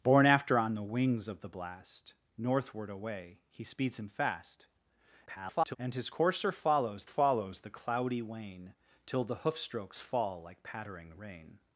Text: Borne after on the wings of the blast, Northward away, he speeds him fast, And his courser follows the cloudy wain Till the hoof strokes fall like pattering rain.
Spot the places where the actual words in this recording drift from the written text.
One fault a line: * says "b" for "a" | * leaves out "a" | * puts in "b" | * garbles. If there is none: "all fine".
* garbles
* puts in "follows"